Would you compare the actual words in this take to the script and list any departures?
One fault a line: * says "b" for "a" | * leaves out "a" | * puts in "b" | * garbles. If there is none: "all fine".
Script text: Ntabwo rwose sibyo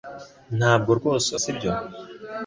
all fine